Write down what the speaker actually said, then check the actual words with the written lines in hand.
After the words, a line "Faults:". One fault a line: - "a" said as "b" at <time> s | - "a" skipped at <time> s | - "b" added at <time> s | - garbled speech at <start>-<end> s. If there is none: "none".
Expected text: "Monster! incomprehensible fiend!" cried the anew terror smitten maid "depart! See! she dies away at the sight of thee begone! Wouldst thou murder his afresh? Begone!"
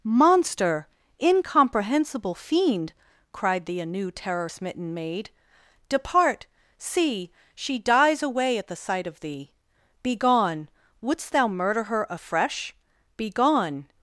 "Monster! incomprehensible fiend!" cried the anew terror smitten maid "depart! See! she dies away at the sight of thee begone! Wouldst thou murder her afresh? Begone!"
Faults:
- "his" said as "her" at 11.9 s